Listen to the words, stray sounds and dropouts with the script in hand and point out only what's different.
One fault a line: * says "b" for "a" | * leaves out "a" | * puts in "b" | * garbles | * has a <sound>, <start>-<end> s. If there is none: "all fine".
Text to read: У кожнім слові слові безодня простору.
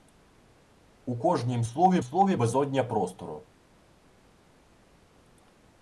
all fine